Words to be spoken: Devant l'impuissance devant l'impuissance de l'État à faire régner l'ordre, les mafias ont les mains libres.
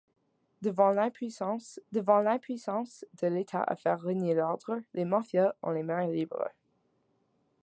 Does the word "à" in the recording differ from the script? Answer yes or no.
no